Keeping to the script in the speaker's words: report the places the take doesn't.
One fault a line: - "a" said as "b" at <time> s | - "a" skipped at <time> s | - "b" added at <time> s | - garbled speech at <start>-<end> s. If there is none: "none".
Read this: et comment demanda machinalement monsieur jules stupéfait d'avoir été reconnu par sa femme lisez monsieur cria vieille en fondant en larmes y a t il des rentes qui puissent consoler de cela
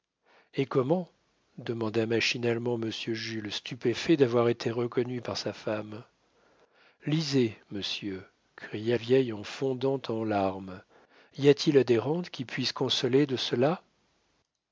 none